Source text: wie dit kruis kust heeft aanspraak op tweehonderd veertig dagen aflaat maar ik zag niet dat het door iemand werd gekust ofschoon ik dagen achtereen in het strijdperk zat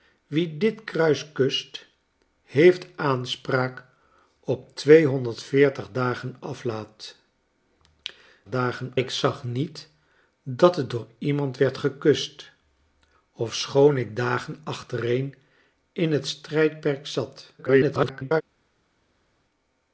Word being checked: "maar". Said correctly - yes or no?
no